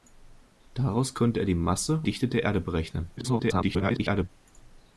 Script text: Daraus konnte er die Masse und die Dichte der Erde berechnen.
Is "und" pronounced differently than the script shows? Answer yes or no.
yes